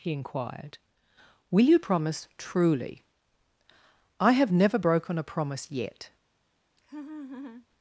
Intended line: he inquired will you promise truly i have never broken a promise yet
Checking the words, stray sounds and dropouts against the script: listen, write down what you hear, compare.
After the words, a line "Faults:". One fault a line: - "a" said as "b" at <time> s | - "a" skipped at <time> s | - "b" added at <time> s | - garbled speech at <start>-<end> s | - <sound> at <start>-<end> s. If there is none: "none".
he inquired will you promise truly i have never broken a promise yet
Faults:
- laugh at 6.8-7.7 s